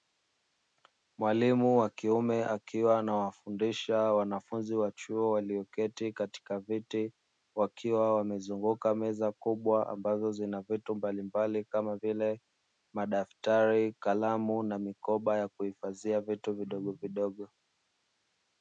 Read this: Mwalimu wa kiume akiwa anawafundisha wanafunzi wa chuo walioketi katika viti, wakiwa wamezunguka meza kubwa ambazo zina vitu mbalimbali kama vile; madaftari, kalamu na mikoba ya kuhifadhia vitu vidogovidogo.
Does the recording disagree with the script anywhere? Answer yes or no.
no